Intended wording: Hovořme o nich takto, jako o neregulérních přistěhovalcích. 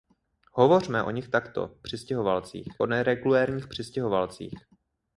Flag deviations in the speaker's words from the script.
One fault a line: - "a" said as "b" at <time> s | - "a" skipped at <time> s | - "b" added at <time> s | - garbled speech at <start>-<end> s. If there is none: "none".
- "jako" said as "přistěhovalcích" at 1.8 s